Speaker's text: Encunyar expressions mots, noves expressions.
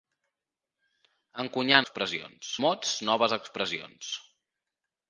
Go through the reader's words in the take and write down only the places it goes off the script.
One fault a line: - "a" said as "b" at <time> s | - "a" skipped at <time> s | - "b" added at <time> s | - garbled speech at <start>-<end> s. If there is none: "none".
none